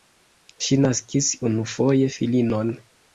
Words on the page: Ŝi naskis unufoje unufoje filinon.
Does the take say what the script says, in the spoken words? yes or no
no